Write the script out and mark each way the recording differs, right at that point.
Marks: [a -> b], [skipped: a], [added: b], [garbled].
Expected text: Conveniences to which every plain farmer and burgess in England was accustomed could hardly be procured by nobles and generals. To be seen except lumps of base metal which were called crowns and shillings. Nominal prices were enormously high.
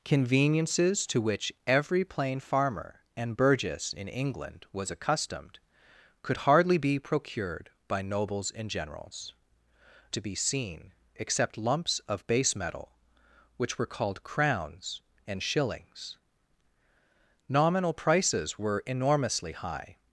Conveniences to which every plain farmer and burgess in England was accustomed could hardly be procured by nobles and generals. To be seen except lumps of base metal which were called crowns and shillings. Nominal prices were enormously high.